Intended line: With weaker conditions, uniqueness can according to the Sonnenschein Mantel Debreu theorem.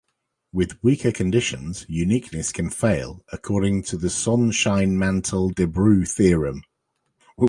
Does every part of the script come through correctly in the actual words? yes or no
no